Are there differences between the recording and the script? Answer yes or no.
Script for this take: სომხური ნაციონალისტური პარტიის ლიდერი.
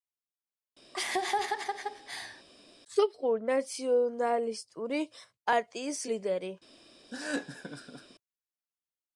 no